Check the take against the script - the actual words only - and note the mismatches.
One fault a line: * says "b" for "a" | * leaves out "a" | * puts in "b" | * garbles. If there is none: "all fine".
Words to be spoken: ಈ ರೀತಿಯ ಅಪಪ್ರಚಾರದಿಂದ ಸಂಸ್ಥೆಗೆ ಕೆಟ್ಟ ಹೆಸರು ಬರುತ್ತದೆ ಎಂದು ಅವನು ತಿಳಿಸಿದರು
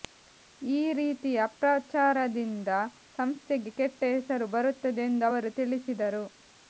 * says "ಅವರು" for "ಅವನು"